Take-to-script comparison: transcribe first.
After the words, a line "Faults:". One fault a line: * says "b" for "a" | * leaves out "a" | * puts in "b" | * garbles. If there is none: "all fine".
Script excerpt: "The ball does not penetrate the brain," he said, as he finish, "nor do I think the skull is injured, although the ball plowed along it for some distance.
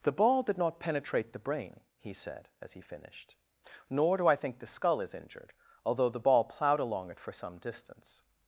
"The ball did not penetrate the brain," he said, as he finished, "nor do I think the skull is injured, although the ball plowed along it for some distance.
Faults:
* says "did" for "does"
* says "finished" for "finish"